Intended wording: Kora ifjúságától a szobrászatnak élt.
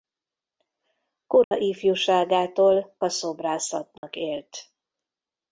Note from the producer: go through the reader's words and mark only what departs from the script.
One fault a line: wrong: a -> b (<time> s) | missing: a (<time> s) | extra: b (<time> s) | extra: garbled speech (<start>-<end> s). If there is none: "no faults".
no faults